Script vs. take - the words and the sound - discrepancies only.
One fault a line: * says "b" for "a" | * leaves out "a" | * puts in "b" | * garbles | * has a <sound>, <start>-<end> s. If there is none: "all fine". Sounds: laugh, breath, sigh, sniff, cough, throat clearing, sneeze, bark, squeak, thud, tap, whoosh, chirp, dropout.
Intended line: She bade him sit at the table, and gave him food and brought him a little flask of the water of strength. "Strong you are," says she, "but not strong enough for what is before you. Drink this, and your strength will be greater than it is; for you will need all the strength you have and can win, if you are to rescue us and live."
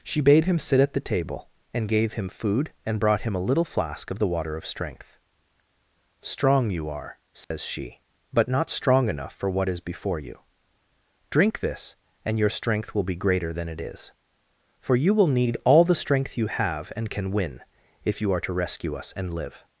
* has a dropout, 7.4-7.5 s